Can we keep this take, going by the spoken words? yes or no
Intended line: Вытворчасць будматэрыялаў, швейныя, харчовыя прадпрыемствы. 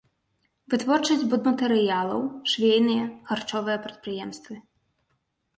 yes